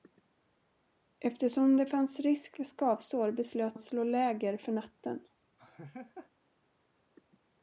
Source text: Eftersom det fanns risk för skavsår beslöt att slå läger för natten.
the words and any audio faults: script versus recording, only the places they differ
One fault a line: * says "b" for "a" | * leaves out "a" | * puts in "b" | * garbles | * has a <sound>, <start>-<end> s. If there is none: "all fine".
* has a laugh, 5.6-6.3 s